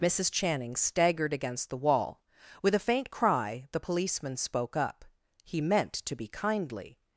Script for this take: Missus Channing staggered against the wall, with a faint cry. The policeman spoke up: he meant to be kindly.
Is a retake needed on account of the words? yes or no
no